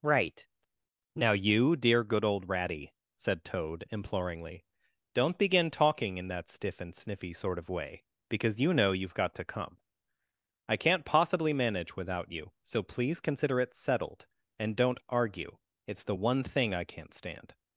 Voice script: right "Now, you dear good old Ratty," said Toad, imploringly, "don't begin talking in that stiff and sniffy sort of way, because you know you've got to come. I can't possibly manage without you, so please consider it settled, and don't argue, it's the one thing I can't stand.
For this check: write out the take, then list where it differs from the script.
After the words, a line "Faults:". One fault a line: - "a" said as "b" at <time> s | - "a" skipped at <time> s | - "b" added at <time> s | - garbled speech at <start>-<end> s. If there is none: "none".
right "Now, you dear good old Ratty," said Toad, imploringly, "don't begin talking in that stiff and sniffy sort of way, because you know you've got to come. I can't possibly manage without you, so please consider it settled, and don't argue, it's the one thing I can't stand.
Faults:
none